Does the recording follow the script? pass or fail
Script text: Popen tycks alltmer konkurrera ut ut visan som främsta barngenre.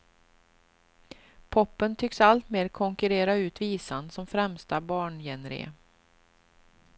fail